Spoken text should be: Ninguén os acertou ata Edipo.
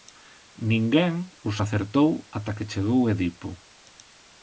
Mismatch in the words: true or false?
true